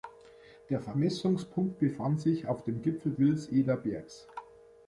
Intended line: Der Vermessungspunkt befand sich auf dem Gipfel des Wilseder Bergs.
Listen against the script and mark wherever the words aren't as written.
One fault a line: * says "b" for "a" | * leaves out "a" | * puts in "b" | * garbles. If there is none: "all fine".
* leaves out "des"